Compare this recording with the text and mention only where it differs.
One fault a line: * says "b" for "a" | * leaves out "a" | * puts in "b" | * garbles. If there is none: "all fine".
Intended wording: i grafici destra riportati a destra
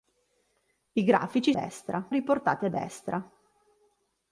all fine